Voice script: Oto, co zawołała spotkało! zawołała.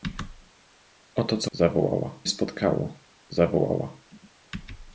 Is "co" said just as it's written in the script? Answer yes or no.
yes